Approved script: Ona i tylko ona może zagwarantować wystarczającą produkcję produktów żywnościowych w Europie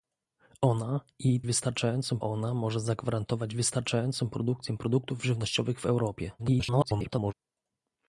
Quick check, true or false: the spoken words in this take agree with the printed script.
false